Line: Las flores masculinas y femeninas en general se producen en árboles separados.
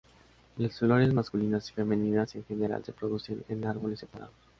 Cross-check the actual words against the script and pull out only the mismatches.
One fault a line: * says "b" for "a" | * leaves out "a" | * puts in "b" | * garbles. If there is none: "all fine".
all fine